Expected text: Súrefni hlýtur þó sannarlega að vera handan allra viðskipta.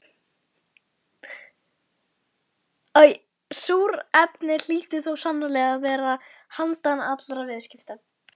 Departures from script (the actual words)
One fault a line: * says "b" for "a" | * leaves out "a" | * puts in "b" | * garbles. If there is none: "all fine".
all fine